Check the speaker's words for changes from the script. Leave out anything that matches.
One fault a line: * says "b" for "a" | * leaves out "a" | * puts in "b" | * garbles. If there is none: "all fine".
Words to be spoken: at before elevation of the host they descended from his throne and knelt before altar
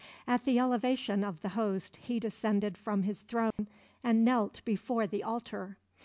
* says "the" for "before"
* says "he" for "they"
* puts in "the"